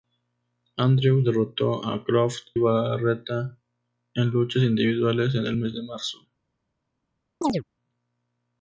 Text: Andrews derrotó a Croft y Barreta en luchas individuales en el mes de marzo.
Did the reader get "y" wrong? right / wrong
wrong